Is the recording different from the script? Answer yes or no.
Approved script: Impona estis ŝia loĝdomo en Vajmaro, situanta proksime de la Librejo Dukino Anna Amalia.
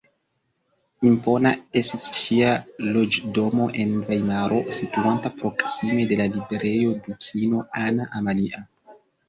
no